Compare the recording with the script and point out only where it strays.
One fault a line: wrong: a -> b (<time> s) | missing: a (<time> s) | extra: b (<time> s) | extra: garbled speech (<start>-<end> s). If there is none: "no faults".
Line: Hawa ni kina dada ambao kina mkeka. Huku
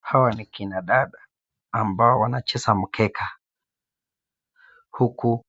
wrong: kina -> wanacheza (2.2 s)